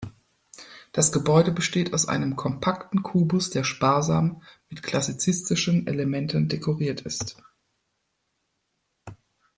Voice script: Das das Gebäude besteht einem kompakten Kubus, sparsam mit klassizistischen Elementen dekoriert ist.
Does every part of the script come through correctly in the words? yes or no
no